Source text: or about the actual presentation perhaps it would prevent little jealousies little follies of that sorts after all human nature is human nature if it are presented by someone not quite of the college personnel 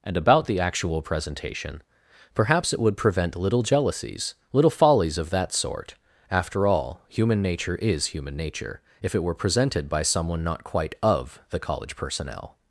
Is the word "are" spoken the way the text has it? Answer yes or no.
no